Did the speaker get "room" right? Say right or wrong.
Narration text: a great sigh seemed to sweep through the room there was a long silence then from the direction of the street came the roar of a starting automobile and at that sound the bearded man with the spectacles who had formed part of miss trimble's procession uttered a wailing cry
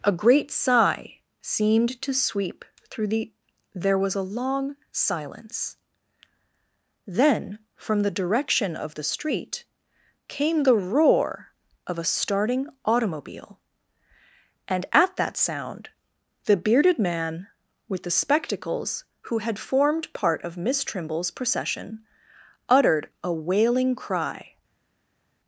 wrong